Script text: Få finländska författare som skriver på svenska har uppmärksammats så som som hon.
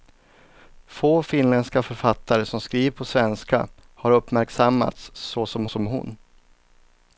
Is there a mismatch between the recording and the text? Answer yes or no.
no